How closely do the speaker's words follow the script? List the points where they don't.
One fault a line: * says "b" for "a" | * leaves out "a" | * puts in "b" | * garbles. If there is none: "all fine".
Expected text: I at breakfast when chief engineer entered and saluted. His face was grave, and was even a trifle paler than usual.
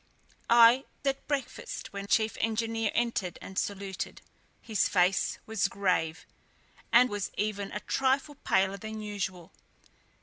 all fine